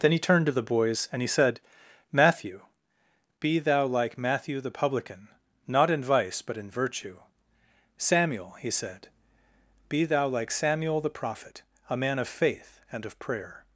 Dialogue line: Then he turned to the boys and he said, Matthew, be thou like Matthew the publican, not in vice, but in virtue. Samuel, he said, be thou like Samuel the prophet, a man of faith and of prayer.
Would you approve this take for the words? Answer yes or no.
yes